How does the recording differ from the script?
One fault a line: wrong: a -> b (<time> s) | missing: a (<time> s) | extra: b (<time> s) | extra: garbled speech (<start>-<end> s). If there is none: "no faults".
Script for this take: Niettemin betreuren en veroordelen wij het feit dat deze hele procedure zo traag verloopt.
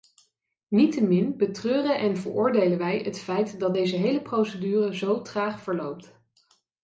no faults